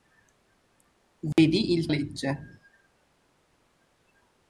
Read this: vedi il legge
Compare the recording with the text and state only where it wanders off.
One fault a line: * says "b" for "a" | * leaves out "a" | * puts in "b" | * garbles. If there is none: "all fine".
all fine